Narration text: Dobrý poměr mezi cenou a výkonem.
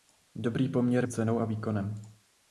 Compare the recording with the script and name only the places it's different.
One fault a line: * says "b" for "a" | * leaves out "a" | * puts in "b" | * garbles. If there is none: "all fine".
* leaves out "mezi"